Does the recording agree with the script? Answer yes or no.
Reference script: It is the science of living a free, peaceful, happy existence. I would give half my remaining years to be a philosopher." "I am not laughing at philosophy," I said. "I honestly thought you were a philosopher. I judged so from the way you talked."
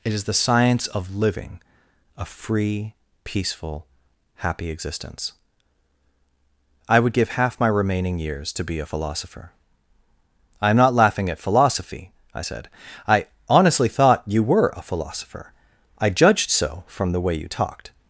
yes